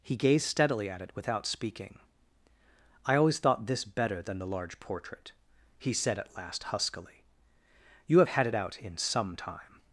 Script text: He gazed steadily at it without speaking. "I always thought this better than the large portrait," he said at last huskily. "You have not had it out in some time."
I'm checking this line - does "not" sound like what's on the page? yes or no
no